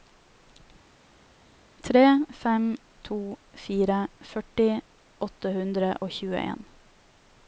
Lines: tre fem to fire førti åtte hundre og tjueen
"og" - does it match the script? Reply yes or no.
yes